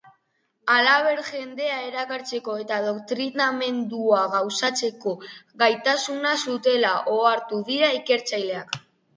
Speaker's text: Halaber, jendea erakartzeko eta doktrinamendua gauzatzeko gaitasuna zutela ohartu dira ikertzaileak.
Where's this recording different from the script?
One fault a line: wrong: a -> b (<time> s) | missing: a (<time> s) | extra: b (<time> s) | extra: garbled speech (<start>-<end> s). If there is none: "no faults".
no faults